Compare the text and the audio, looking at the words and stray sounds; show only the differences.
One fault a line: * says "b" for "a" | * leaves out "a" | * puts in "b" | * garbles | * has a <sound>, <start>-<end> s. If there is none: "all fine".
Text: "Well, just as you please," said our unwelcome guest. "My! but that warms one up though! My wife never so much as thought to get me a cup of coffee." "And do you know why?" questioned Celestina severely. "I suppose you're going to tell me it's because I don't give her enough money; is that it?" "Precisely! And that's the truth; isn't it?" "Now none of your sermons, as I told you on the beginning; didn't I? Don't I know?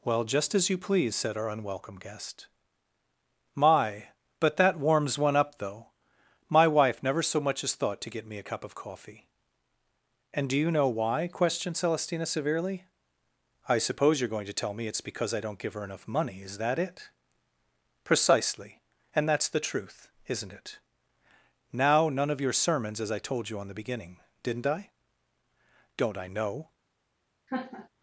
* has a laugh, 27.5-27.9 s